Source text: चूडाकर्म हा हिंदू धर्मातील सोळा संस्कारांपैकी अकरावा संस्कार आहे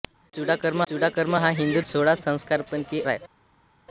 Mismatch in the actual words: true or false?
true